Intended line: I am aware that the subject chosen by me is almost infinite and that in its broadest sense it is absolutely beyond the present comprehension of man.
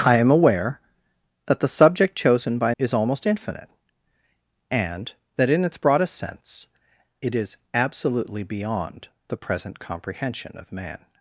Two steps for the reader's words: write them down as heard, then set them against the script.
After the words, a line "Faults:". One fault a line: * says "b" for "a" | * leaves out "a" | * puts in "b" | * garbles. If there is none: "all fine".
I am aware that the subject chosen by is almost infinite and that in its broadest sense it is absolutely beyond the present comprehension of man.
Faults:
* leaves out "me"